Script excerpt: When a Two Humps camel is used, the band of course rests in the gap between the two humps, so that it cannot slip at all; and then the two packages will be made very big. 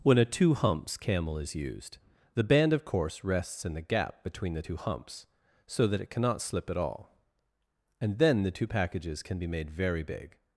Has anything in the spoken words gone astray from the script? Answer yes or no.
yes